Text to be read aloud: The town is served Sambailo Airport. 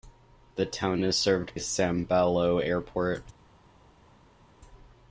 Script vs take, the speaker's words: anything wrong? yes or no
no